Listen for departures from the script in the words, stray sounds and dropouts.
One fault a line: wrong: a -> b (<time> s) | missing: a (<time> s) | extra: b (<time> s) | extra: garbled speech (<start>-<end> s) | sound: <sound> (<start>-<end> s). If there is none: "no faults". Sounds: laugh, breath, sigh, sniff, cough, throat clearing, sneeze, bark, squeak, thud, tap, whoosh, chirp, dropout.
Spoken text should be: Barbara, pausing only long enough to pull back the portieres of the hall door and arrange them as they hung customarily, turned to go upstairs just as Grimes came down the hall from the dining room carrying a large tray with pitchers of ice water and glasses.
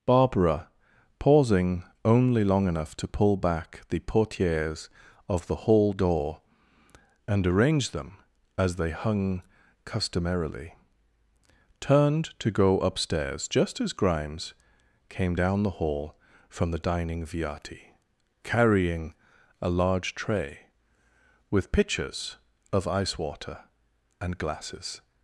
wrong: room -> viati (17.3 s)